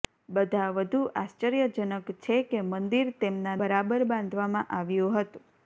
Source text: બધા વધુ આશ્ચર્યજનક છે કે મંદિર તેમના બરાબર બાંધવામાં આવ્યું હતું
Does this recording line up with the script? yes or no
yes